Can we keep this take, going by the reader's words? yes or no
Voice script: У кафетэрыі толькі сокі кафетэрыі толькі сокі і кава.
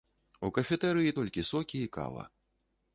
no